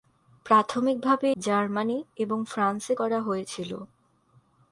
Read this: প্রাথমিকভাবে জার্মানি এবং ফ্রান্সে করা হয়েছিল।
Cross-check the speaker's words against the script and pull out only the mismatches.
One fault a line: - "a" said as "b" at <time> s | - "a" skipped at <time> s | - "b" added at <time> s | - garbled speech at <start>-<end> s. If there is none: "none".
none